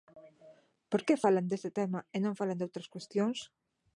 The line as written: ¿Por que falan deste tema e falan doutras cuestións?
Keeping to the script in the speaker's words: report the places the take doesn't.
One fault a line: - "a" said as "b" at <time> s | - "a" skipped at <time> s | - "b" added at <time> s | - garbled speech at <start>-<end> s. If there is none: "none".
- "non" added at 2.2 s